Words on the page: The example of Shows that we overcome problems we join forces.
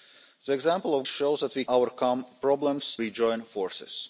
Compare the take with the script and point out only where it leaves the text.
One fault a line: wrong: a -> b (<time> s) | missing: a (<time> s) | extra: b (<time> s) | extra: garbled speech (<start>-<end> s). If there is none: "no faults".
no faults